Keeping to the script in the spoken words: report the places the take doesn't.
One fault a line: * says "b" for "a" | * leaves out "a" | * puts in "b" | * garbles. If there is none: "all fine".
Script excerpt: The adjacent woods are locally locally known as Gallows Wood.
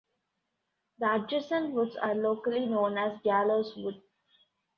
* leaves out "locally"